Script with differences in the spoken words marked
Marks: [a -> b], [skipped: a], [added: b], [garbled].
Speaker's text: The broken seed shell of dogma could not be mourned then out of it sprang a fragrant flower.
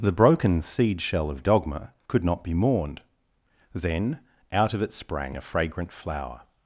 The broken seed shell of dogma could not be mourned then out of it sprang a fragrant flower.